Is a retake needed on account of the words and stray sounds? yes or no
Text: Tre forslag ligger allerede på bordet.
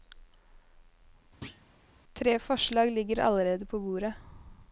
yes